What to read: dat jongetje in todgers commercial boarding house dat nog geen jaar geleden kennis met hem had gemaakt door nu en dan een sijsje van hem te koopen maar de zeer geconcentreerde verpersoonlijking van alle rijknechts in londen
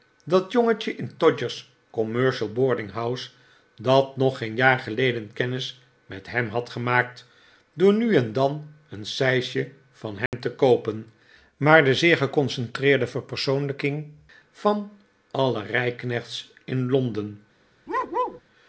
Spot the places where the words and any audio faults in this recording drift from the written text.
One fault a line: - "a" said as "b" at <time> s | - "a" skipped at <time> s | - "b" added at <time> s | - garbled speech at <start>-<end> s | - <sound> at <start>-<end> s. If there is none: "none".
- dropout at 10.3-10.3 s
- bark at 17.9-18.4 s